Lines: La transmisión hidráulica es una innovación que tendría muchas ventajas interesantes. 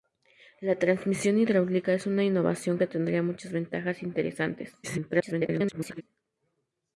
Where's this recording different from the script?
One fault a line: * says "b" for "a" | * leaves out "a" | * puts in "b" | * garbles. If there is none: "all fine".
* garbles